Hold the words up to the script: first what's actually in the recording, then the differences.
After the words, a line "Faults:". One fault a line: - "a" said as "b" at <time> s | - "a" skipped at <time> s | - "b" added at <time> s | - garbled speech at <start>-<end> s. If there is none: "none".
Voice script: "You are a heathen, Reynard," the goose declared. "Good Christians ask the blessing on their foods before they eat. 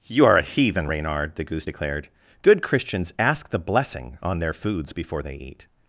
"You are a heathen, Reynard," the goose declared. "Good Christians ask the blessing on their foods before they eat.
Faults:
none